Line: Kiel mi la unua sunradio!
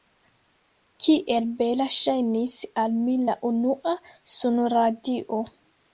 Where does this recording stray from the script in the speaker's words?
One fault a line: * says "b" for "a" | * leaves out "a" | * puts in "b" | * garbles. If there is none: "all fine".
* puts in "bela ŝajnis al"